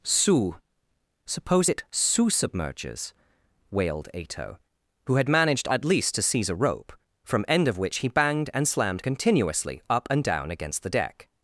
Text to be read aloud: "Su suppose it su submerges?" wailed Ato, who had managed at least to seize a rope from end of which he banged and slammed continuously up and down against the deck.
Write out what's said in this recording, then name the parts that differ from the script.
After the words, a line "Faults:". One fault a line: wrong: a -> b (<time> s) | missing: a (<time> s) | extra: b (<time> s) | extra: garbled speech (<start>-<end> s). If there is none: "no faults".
"Su suppose it su submerges?" wailed Ato, who had managed at least to seize a rope from end of which he banged and slammed continuously up and down against the deck.
Faults:
no faults